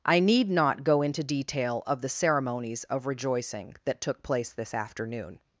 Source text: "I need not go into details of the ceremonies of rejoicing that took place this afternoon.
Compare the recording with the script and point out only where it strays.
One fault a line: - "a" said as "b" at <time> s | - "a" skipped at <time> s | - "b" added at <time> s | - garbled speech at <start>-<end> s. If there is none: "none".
- "details" said as "detail" at 1.2 s